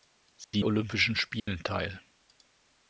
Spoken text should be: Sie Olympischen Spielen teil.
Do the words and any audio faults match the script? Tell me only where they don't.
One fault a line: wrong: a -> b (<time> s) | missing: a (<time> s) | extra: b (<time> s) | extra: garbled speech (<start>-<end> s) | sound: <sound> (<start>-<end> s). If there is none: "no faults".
sound: dropout (0.4-0.5 s)
sound: dropout (1.4-1.5 s)